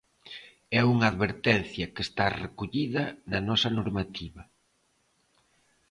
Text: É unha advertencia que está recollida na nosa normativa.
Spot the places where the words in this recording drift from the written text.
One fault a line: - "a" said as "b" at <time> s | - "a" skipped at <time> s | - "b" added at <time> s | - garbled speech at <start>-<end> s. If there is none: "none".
none